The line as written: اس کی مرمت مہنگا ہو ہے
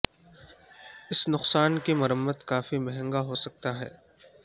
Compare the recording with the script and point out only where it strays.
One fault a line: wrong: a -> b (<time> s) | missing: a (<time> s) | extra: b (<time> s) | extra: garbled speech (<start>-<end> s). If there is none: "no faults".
extra: نقصان (1.3 s)
extra: کافی (2.5 s)
extra: سکتا (3.4 s)